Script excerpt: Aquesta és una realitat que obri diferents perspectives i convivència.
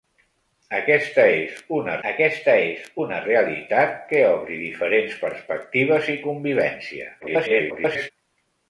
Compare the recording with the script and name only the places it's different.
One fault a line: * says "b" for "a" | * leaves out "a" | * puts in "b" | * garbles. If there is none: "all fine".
* puts in "aquesta és una"
* garbles